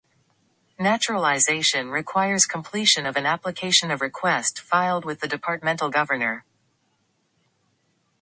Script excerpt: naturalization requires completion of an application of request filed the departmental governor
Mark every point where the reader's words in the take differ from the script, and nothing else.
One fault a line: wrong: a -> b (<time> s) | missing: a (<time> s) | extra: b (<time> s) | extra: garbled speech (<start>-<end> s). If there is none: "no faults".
extra: with (5.0 s)